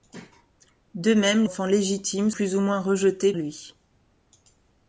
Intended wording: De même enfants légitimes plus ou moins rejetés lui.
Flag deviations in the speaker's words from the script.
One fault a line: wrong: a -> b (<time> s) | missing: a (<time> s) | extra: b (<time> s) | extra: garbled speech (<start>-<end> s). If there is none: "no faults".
no faults